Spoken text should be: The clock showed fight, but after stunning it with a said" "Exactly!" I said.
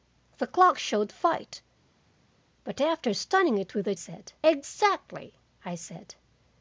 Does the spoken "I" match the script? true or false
true